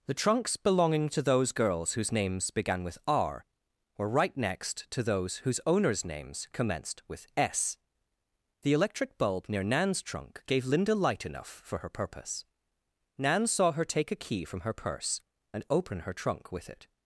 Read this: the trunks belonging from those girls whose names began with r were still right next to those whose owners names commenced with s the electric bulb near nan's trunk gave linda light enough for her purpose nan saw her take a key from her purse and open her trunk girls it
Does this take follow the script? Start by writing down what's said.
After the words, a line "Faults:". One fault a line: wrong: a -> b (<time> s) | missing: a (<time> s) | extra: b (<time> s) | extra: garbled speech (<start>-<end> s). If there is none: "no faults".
the trunks belonging to those girls whose names began with r were right next to those whose owners names commenced with s the electric bulb near nan's trunk gave linda light enough for her purpose nan saw her take a key from her purse and open her trunk with it
Faults:
wrong: from -> to (1.1 s)
missing: still (4.1 s)
wrong: girls -> with (16.5 s)